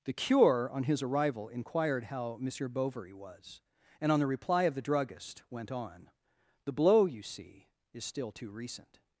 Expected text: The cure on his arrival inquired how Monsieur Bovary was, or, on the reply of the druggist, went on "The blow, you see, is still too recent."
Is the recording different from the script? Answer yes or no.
yes